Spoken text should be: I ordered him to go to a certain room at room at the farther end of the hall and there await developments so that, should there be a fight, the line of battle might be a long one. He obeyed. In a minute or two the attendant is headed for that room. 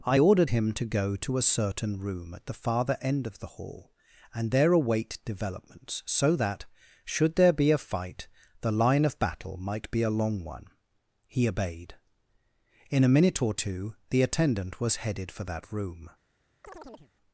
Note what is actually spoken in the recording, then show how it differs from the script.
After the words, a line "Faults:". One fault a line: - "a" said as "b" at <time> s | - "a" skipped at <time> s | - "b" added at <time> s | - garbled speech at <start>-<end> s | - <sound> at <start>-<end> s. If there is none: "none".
I ordered him to go to a certain room at the farther end of the hall and there await developments so that, should there be a fight, the line of battle might be a long one. He obeyed. In a minute or two the attendant was headed for that room.
Faults:
- "room at" skipped at 2.5 s
- "is" said as "was" at 14.8 s
- chirp at 16.6-17.1 s